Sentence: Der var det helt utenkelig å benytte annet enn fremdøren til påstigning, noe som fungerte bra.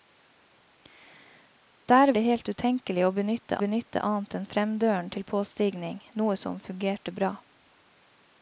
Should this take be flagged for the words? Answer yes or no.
yes